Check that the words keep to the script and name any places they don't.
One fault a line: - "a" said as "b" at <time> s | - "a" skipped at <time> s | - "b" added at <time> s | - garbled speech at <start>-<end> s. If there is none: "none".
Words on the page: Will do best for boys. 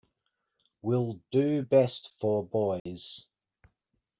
none